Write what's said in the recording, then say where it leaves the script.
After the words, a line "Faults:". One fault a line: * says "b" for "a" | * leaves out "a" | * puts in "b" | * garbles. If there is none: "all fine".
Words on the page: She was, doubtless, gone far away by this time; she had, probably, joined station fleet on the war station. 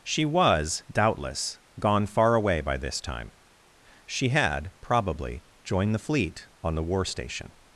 She was, doubtless, gone far away by this time; she had, probably, joined the fleet on the war station.
Faults:
* says "the" for "station"